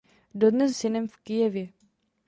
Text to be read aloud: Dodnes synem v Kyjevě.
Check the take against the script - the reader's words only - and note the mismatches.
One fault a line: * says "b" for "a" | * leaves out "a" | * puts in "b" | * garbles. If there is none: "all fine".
all fine